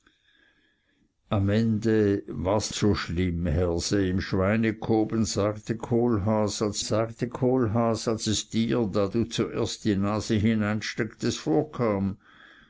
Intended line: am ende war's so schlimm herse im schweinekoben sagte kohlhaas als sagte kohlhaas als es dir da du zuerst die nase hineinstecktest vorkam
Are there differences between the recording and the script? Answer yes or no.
no